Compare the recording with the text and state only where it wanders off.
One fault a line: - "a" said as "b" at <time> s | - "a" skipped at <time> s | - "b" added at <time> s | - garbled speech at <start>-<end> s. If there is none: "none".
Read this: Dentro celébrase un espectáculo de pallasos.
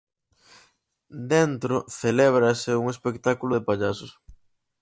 none